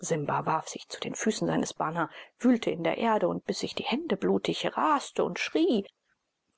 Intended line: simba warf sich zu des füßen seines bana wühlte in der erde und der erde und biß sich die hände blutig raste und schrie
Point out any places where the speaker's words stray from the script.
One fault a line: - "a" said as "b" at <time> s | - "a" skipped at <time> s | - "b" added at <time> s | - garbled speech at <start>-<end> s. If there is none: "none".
- "des" said as "den" at 1.0 s
- "der erde und" skipped at 3.4 s